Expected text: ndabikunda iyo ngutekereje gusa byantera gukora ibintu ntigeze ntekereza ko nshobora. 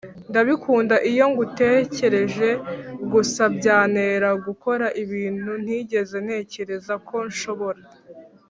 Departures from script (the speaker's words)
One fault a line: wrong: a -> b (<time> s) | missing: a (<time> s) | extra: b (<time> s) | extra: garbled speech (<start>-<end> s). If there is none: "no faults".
no faults